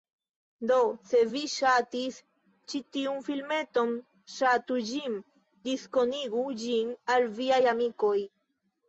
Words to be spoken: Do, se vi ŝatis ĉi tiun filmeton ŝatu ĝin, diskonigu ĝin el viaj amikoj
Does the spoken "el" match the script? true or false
false